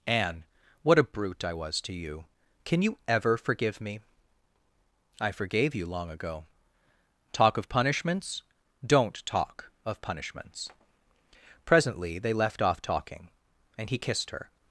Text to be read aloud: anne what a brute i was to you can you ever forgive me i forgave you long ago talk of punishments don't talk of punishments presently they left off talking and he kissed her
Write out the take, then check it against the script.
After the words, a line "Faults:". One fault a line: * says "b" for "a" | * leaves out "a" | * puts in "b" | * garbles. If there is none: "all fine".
anne what a brute i was to you can you ever forgive me i forgave you long ago talk of punishments don't talk of punishments presently they left off talking and he kissed her
Faults:
all fine